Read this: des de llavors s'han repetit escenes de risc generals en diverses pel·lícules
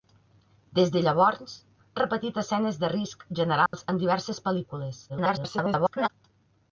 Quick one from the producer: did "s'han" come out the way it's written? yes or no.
no